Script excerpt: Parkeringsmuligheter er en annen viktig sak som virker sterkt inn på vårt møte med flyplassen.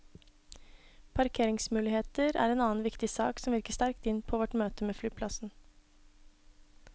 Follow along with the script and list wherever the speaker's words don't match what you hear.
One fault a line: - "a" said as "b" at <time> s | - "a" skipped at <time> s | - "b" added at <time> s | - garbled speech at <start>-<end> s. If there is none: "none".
none